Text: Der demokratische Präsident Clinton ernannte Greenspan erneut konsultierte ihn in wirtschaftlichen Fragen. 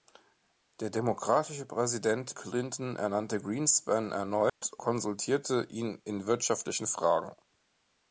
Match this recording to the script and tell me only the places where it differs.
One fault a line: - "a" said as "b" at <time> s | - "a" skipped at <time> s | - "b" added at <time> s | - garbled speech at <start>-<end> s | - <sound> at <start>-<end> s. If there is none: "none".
- dropout at 4.5-4.6 s